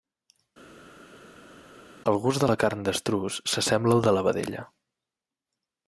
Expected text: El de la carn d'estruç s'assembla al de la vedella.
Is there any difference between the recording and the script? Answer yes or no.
yes